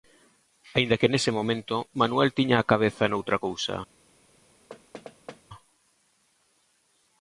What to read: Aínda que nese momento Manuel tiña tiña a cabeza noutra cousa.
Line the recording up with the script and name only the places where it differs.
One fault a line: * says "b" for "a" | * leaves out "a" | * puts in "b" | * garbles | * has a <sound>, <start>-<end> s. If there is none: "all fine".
* leaves out "tiña"
* has a thud, 4.7-5.4 s